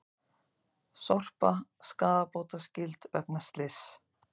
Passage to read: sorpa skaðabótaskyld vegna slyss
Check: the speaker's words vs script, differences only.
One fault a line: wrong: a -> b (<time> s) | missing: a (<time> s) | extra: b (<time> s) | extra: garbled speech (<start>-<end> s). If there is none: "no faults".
no faults